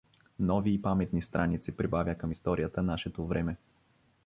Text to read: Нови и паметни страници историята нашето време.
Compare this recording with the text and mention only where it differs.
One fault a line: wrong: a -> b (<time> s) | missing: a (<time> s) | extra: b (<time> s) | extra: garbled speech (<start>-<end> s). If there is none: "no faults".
extra: прибавя към (1.8 s)